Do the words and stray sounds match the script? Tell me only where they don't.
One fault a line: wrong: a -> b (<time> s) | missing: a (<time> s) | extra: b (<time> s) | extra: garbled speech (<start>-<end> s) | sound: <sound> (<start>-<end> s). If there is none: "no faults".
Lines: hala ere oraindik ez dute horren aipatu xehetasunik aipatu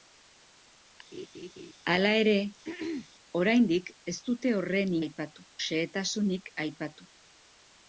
sound: laugh (1.1-1.7 s)
sound: throat clearing (2.6-3.1 s)